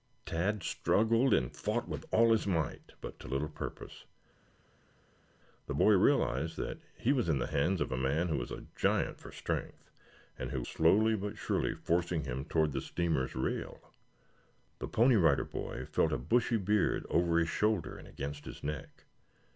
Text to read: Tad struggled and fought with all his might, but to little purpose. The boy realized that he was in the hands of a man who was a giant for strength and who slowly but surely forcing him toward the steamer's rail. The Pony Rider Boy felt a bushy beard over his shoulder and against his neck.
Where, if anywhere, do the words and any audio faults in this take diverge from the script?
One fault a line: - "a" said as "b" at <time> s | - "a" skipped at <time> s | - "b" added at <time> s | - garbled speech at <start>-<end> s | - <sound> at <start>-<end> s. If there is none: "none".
none